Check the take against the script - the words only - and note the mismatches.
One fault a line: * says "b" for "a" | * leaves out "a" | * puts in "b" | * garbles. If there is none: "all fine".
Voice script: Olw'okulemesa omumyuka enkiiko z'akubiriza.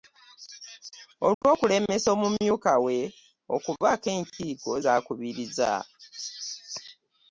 * puts in "we okubaako"